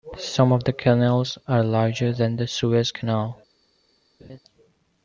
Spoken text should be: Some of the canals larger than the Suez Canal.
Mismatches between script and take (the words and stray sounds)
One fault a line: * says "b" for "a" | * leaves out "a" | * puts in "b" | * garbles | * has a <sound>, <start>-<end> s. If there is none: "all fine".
* puts in "are"
* has a laugh, 4.2-4.4 s